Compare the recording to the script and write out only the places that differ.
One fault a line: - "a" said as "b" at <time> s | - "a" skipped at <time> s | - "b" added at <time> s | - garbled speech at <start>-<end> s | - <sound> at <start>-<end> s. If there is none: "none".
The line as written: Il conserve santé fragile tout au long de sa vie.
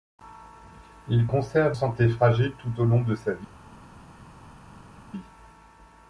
none